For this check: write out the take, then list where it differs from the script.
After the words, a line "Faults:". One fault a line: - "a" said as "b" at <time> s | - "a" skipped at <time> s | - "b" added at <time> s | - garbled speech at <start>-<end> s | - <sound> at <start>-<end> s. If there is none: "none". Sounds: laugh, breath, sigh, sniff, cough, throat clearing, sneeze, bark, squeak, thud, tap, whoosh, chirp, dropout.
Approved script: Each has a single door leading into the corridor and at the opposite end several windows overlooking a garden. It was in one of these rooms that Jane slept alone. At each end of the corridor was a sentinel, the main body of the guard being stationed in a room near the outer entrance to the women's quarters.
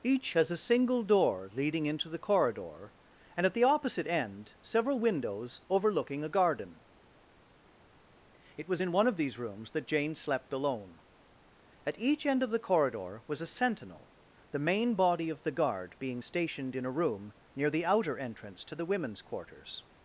Each has a single door leading into the corridor and at the opposite end several windows overlooking a garden. It was in one of these rooms that Jane slept alone. At each end of the corridor was a sentinel, the main body of the guard being stationed in a room near the outer entrance to the women's quarters.
Faults:
none